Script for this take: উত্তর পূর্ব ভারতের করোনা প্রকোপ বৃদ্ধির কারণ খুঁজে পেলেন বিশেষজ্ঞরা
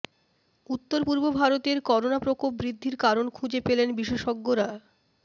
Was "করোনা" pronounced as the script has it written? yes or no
yes